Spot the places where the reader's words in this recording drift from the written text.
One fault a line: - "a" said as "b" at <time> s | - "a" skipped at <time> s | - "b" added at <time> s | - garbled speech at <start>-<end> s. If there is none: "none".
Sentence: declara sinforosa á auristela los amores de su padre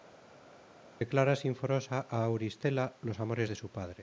none